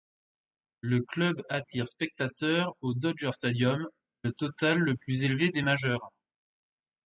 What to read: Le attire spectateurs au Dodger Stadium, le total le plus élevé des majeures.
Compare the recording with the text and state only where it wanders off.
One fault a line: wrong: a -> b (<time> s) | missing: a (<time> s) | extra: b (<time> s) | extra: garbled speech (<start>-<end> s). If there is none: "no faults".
extra: club (1.0 s)